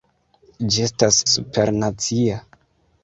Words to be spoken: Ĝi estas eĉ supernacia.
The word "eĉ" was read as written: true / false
false